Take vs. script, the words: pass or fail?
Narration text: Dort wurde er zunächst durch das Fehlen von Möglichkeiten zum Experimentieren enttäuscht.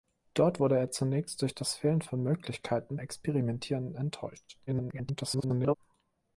fail